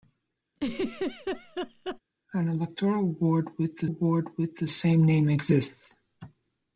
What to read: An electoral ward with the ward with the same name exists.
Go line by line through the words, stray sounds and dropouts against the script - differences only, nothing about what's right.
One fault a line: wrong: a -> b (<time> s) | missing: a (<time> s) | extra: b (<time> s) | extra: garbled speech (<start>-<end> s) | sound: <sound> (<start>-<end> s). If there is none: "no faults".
sound: laugh (0.5-2.0 s)